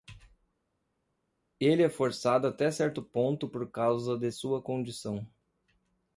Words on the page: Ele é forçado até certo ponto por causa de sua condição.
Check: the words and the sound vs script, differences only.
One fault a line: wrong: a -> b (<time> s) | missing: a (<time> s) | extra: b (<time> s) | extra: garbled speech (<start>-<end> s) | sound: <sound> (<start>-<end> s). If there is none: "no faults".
no faults